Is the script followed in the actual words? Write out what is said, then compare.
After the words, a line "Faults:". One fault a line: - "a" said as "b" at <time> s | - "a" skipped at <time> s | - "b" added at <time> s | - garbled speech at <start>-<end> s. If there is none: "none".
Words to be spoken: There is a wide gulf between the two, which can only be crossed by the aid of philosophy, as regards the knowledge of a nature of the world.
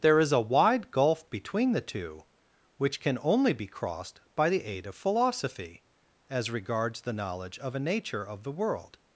There is a wide gulf between the two, which can only be crossed by the aid of philosophy, as regards the knowledge of a nature of the world.
Faults:
none